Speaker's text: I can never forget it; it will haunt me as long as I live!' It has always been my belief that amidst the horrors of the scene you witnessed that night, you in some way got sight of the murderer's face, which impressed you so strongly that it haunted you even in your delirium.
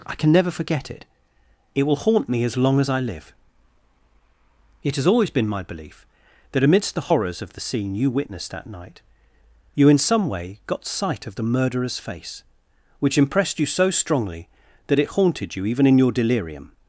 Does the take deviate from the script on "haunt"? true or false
false